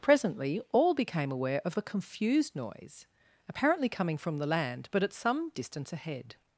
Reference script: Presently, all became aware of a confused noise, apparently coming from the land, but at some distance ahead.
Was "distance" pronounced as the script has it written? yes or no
yes